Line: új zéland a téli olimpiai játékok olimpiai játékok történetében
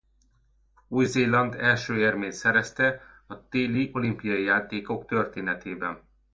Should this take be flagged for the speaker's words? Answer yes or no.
yes